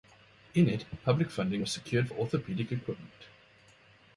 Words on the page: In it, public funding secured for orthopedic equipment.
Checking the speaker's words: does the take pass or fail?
fail